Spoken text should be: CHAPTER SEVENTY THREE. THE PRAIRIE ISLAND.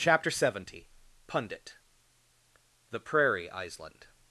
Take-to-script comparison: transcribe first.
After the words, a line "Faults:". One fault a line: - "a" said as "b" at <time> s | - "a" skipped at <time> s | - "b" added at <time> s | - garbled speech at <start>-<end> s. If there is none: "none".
CHAPTER SEVENTY Pundit. THE PRAIRIE ISLAND.
Faults:
- "THREE" said as "Pundit" at 1.3 s